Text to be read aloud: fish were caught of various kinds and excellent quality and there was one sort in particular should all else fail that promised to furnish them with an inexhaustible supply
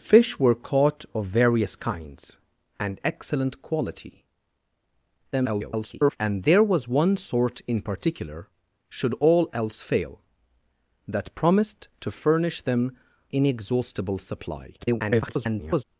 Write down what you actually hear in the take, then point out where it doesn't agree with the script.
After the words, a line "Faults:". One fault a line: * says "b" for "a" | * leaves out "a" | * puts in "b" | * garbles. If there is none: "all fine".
fish were caught of various kinds and excellent quality [garbled] and there was one sort in particular should all else fail that promised to furnish them inexhaustible supply [garbled]
Faults:
* garbles
* leaves out "with an"
* garbles